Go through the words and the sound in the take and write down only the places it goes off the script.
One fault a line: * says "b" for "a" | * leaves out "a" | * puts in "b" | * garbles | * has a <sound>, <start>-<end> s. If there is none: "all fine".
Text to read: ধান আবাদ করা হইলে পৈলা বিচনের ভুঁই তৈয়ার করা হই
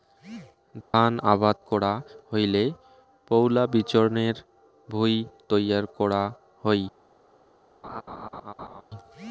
* has a dropout, 0.8-0.9 s
* has a laugh, 7.8-8.8 s